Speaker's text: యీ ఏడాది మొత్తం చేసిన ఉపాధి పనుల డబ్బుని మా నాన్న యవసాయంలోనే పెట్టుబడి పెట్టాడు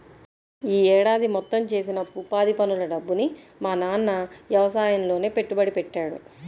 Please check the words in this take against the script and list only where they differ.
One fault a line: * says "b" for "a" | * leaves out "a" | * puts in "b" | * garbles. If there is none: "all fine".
all fine